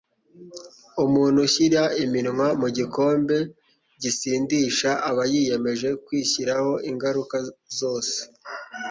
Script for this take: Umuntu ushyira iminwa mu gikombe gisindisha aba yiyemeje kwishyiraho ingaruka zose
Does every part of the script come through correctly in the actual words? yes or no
yes